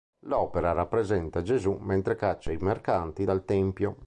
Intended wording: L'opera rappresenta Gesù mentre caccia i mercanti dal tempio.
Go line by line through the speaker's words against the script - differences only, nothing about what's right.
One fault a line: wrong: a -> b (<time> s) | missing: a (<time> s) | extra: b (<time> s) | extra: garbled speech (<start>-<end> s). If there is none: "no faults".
no faults